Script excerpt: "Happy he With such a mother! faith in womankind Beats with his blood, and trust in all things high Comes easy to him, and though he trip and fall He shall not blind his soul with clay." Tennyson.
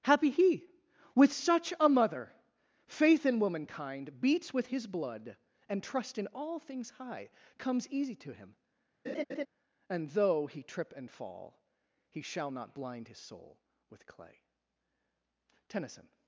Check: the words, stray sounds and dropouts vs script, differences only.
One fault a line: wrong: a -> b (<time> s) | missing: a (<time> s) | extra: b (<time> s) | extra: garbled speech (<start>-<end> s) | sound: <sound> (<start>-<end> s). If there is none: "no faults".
sound: laugh (9.0-9.5 s)